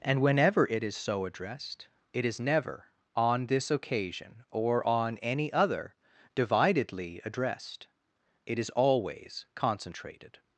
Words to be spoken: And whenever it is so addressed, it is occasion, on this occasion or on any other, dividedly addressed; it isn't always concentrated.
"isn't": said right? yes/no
no